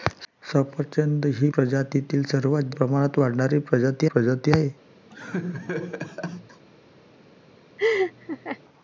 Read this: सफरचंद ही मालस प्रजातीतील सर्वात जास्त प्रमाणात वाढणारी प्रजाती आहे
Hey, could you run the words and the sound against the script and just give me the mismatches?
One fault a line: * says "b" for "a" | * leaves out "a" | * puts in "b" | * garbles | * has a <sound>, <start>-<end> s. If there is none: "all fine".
* leaves out "मालस"
* leaves out "जास्त"
* puts in "प्रजाती"
* has a laugh, 5.1-6.6 s
* has a laugh, 7.8-8.6 s